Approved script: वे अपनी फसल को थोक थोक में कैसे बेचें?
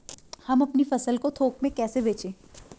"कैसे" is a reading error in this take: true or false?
false